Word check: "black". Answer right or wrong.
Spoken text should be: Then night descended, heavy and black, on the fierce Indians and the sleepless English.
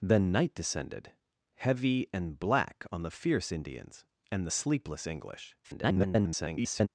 right